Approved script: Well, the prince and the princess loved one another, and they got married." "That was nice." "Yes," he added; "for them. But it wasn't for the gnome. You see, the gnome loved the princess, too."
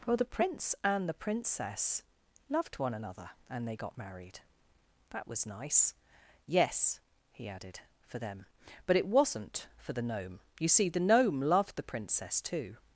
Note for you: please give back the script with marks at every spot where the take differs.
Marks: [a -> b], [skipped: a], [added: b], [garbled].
Well, the prince and the princess loved one another, and they got married." "That was nice." "Yes," he added; "for them. But it wasn't for the gnome. You see, the gnome loved the princess, too."